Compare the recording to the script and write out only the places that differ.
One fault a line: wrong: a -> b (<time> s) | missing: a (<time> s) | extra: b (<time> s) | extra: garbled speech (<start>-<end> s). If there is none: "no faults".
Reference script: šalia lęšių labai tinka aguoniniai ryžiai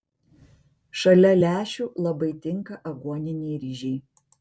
no faults